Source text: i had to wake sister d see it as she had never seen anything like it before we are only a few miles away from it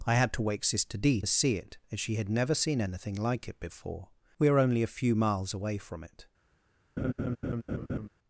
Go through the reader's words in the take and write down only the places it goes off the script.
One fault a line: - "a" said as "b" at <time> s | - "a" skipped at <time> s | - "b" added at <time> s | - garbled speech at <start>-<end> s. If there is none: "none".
none